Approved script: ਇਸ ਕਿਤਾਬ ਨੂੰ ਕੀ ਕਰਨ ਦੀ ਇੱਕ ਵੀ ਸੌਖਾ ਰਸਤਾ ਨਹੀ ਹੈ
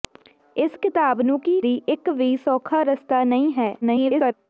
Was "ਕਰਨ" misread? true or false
true